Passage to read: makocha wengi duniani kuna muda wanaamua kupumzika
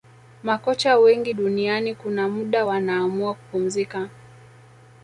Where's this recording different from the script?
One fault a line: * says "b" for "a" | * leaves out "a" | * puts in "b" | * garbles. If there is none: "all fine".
all fine